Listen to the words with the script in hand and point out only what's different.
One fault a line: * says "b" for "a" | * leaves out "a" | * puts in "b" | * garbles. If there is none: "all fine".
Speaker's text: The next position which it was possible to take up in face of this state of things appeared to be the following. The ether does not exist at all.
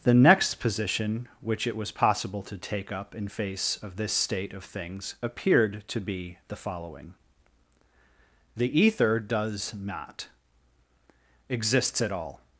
* says "exists" for "exist"